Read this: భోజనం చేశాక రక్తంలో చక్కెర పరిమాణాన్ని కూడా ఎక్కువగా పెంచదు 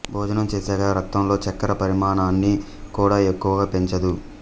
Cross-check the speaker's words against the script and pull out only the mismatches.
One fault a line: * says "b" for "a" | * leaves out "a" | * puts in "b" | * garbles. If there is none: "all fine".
all fine